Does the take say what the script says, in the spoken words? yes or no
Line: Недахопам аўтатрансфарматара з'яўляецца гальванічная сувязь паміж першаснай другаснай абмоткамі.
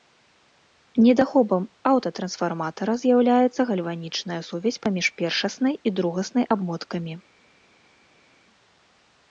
no